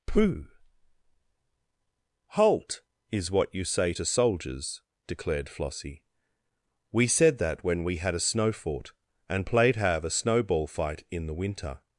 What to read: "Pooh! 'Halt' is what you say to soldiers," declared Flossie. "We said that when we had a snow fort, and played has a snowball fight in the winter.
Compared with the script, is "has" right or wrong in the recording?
wrong